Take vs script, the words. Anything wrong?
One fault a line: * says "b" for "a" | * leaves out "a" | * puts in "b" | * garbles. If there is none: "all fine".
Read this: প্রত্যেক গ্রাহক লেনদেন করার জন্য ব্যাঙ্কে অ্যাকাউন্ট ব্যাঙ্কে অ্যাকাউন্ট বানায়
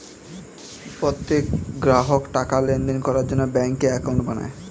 * puts in "টাকার"
* leaves out "ব্যাঙ্কে অ্যাকাউন্ট"